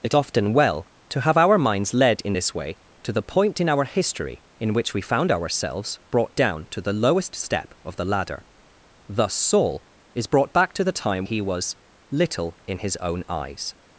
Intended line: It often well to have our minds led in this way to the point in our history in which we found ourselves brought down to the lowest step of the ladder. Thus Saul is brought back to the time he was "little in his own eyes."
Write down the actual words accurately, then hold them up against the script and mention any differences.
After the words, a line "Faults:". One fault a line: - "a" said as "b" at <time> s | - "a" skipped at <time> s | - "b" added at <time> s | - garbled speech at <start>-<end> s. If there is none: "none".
It often well to have our minds led in this way to the point in our history in which we found ourselves brought down to the lowest step of the ladder. Thus Saul is brought back to the time he was "little in his own eyes."
Faults:
none